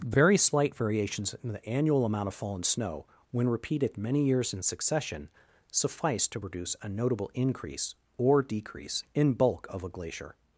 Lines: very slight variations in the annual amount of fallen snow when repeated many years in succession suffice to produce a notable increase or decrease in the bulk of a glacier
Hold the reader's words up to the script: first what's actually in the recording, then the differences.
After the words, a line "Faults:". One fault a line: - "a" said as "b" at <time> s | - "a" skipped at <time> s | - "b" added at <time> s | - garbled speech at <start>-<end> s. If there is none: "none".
very slight variations in the annual amount of fallen snow when repeated many years in succession suffice to produce a notable increase or decrease in bulk of a glacier
Faults:
- "the" skipped at 9.3 s